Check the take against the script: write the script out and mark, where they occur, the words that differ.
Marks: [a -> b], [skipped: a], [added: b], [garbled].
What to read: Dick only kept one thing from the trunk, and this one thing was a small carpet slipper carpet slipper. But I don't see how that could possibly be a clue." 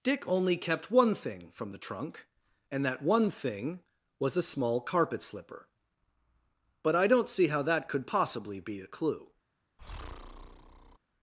Dick only kept one thing from the trunk, and [this -> that] one thing was a small carpet slipper [skipped: carpet slipper.] But I don't see how that could possibly be a clue."